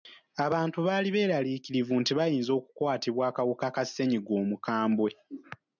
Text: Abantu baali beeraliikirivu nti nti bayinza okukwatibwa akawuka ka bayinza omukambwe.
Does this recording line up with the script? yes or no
no